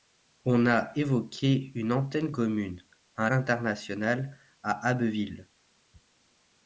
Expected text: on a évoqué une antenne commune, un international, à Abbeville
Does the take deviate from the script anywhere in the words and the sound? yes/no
no